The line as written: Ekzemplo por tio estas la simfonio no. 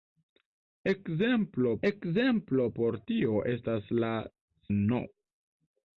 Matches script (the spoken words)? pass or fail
fail